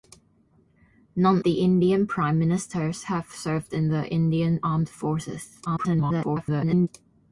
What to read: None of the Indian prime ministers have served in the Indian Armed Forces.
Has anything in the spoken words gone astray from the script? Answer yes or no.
yes